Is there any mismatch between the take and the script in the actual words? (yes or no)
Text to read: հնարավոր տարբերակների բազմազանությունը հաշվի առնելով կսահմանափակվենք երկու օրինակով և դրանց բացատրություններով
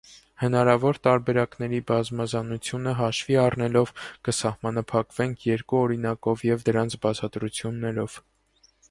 no